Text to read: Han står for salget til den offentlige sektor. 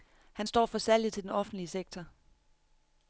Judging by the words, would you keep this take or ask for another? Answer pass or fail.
pass